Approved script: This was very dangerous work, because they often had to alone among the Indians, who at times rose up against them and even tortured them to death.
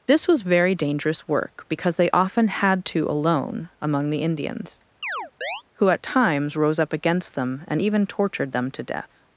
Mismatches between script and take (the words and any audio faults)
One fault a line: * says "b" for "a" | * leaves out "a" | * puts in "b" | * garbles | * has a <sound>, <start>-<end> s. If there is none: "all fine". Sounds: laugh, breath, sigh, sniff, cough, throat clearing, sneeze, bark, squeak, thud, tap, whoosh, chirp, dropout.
* has a chirp, 5.0-5.6 s